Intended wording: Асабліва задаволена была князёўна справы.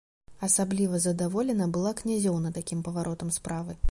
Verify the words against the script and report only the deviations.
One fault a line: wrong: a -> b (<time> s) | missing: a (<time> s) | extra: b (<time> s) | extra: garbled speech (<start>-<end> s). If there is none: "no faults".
extra: такім паваротам (2.6 s)